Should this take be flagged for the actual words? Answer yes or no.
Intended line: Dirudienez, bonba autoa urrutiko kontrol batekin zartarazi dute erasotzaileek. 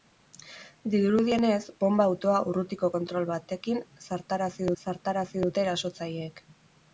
yes